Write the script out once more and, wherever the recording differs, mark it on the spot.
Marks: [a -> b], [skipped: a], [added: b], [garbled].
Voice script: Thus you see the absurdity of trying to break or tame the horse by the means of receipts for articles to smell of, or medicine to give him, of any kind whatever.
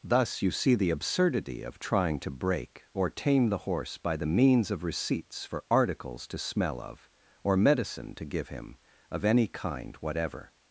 Thus you see the absurdity of trying to break or tame the horse by the means of receipts for articles to smell of, or medicine to give him, of any kind whatever.